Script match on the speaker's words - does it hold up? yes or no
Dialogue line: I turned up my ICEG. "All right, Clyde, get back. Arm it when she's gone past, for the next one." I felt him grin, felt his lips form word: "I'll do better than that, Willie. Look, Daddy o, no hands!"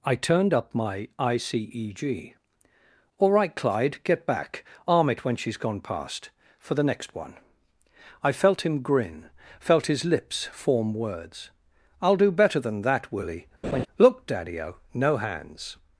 no